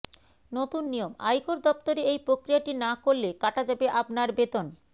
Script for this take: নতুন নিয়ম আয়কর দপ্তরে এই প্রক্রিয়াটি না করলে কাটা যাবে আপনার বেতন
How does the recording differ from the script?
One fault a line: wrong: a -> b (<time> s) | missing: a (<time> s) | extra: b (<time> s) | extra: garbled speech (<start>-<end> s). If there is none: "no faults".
no faults